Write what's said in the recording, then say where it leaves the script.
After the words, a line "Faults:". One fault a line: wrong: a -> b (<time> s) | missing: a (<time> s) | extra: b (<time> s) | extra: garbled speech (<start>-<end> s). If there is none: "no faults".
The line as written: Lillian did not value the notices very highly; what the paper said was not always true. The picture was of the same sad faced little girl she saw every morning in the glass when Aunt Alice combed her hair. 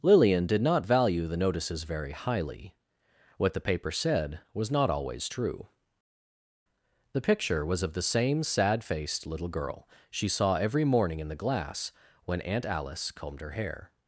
Lillian did not value the notices very highly; what the paper said was not always true. The picture was of the same sad faced little girl she saw every morning in the glass when Aunt Alice combed her hair.
Faults:
no faults